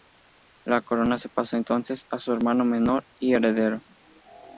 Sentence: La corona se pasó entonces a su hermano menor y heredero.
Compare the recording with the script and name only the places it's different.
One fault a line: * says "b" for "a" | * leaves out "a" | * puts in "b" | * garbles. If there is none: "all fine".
all fine